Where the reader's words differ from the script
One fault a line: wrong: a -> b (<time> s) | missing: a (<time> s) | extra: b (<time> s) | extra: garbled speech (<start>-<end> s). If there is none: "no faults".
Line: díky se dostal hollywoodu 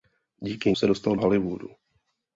no faults